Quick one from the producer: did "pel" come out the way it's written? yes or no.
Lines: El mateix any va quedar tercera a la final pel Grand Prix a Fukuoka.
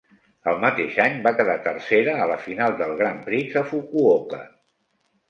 no